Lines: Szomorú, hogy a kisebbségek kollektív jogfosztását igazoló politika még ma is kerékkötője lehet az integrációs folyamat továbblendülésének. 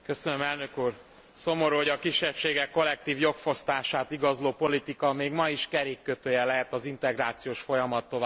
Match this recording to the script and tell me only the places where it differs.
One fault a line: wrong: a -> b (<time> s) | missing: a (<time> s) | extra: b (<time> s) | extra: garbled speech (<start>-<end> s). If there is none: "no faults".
no faults